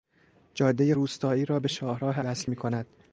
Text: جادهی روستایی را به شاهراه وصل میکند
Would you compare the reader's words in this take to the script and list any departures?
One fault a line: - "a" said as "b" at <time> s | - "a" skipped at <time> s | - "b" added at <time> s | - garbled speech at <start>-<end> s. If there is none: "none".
none